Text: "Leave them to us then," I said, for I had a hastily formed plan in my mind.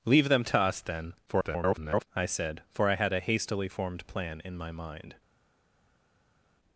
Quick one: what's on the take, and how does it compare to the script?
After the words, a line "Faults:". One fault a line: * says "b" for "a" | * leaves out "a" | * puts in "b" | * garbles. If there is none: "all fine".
"Leave them to us then," [garbled] I said, for I had a hastily formed plan in my mind.
Faults:
* garbles